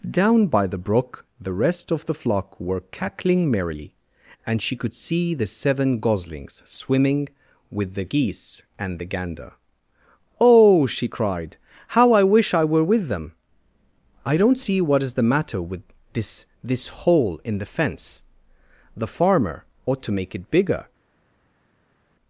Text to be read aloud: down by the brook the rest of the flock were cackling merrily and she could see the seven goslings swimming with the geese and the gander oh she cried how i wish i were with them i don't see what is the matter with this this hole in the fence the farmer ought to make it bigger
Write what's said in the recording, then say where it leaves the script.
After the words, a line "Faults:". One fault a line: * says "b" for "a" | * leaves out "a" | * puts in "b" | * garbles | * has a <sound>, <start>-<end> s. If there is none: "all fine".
down by the brook the rest of the flock were cackling merrily and she could see the seven goslings swimming with the geese and the gander oh she cried how i wish i were with them i don't see what is the matter with this this hole in the fence the farmer ought to make it bigger
Faults:
all fine